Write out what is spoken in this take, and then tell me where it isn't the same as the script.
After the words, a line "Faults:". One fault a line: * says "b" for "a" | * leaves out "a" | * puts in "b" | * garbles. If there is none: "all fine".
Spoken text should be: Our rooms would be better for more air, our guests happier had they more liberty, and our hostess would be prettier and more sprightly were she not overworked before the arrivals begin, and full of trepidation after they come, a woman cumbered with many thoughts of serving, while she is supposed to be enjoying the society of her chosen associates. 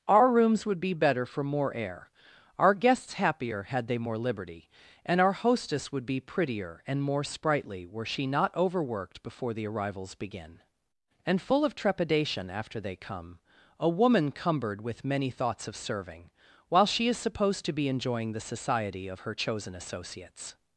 Our rooms would be better for more air, our guests happier had they more liberty, and our hostess would be prettier and more sprightly were she not overworked before the arrivals begin, and full of trepidation after they come, a woman cumbered with many thoughts of serving, while she is supposed to be enjoying the society of her chosen associates.
Faults:
all fine